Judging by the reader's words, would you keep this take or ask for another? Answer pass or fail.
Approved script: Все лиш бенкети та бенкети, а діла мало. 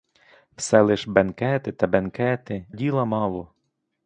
fail